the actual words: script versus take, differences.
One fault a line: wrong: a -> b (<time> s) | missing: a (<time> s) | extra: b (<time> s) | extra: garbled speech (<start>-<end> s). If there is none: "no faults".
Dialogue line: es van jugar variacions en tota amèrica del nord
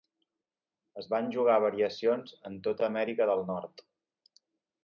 no faults